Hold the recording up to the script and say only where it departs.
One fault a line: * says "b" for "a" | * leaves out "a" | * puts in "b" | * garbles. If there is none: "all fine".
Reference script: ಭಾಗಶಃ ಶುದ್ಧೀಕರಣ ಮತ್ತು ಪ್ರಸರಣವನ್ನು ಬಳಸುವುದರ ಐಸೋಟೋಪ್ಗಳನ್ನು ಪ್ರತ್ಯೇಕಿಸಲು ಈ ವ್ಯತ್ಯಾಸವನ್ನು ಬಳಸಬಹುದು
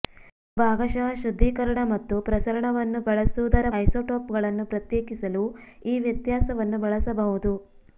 all fine